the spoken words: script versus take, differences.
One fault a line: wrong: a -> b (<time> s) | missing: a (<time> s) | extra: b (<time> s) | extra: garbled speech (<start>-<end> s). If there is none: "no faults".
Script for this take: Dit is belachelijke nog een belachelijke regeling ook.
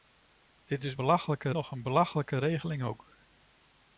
no faults